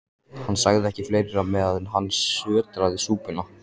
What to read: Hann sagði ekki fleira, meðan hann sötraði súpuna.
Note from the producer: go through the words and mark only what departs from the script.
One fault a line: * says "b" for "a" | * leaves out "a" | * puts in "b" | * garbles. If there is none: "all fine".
all fine